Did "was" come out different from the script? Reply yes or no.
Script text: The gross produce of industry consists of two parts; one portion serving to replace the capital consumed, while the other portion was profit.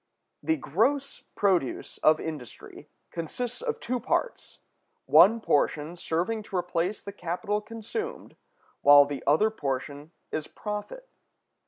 yes